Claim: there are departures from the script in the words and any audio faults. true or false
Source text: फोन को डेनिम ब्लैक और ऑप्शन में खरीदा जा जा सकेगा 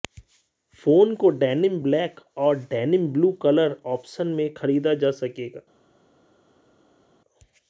true